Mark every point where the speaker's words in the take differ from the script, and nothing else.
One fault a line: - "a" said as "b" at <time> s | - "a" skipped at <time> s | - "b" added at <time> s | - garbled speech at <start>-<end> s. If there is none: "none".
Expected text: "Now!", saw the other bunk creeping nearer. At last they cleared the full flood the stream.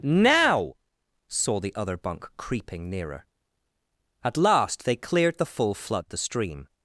none